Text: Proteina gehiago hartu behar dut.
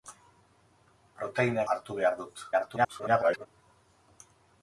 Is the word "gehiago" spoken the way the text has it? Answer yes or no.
no